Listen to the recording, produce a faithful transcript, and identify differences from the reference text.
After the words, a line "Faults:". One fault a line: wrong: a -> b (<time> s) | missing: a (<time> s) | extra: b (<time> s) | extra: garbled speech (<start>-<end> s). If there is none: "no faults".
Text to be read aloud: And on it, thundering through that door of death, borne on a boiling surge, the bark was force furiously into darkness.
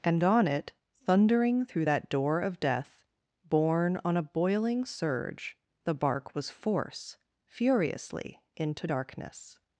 And on it, thundering through that door of death, borne on a boiling surge, the bark was force furiously into darkness.
Faults:
no faults